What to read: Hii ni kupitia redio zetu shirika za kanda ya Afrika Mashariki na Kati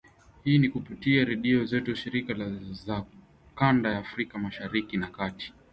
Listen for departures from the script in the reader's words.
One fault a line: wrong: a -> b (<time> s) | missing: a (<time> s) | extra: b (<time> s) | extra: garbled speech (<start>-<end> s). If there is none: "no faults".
no faults